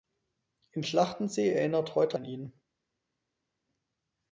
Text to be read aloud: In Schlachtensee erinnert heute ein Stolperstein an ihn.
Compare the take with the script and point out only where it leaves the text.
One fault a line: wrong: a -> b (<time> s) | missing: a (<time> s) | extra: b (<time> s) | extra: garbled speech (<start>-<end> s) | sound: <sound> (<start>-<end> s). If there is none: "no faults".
missing: ein Stolperstein (2.2 s)